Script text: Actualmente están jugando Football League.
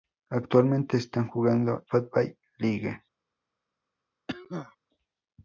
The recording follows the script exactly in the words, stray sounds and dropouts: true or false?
false